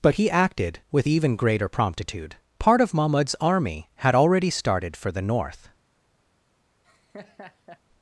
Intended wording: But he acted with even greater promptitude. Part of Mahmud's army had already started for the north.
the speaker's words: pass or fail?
pass